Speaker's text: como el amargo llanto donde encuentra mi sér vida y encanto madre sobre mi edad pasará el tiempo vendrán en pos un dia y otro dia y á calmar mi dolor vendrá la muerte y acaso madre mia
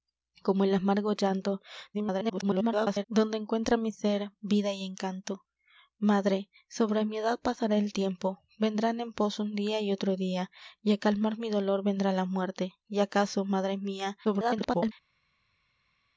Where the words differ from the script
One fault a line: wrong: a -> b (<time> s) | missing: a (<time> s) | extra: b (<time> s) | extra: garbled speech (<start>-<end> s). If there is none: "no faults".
extra: garbled speech (1.9-3.0 s)
extra: garbled speech (14.2-14.9 s)